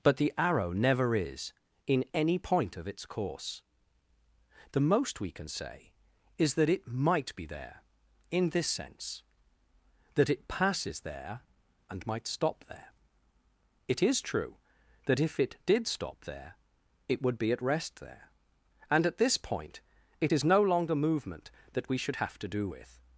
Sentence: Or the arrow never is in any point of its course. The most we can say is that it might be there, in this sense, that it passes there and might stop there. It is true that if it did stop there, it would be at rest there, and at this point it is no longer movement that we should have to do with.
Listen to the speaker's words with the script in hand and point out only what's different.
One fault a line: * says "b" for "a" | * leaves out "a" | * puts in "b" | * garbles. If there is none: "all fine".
* says "But" for "Or"